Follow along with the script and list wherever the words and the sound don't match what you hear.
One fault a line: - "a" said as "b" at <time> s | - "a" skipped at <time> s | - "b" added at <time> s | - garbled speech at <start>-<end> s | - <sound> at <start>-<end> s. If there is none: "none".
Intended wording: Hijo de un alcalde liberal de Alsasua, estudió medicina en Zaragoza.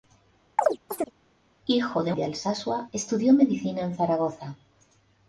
- chirp at 0.6-1.1 s
- "un alcalde liberal" skipped at 2.1 s